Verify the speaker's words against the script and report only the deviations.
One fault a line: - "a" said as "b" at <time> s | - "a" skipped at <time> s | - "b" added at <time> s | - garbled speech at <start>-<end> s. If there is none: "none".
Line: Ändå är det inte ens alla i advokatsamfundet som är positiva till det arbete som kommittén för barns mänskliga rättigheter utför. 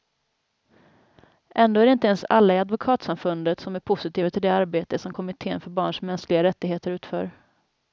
none